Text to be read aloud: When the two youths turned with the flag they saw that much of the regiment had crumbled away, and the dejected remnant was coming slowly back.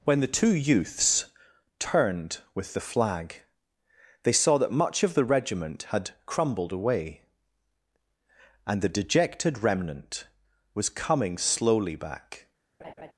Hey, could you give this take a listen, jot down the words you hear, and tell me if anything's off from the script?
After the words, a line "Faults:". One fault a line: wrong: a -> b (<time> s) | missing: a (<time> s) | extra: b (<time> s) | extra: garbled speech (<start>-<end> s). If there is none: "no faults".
When the two youths turned with the flag they saw that much of the regiment had crumbled away, and the dejected remnant was coming slowly back.
Faults:
no faults